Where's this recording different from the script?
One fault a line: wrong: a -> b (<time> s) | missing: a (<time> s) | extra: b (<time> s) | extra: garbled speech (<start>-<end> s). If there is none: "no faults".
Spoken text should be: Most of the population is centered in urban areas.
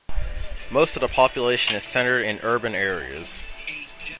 no faults